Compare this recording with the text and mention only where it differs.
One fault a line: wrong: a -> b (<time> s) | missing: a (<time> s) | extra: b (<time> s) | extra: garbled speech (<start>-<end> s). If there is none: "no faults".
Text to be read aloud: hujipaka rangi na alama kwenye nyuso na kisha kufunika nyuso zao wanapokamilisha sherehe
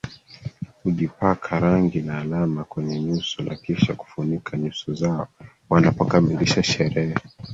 no faults